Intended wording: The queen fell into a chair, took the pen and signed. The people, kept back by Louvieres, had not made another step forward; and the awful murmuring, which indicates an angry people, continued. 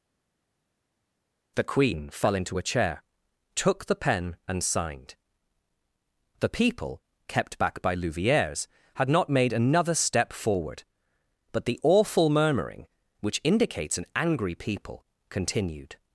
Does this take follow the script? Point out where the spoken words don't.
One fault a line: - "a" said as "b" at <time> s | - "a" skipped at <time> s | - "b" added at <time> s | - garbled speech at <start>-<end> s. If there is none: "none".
- "and" said as "but" at 11.5 s